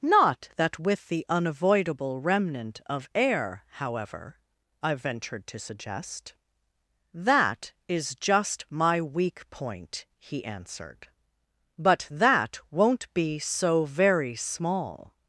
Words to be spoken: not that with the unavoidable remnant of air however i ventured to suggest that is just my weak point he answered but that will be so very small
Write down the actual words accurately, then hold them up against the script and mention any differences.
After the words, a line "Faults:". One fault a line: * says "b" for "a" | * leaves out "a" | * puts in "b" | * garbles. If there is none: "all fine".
not that with the unavoidable remnant of air however i ventured to suggest that is just my weak point he answered but that won't be so very small
Faults:
* says "won't" for "will"